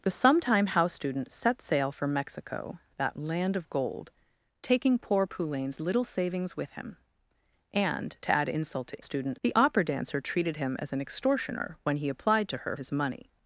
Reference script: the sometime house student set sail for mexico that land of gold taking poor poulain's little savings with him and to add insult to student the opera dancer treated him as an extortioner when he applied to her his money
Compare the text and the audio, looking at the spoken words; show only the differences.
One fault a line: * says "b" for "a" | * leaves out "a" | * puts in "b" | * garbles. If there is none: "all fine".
all fine